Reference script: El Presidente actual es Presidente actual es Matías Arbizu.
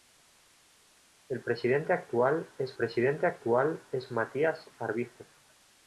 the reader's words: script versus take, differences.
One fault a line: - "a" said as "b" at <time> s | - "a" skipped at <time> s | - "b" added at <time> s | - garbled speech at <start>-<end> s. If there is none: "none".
none